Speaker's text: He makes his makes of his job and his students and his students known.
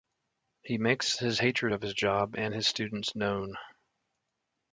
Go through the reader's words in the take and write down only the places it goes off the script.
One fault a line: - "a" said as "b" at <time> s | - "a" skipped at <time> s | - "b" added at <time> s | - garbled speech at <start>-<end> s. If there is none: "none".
- "makes" said as "hatred" at 1.4 s
- "and his students" skipped at 3.2 s